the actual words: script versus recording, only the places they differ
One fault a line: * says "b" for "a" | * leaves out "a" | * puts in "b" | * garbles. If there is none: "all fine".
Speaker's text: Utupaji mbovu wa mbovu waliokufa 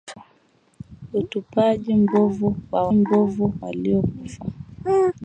all fine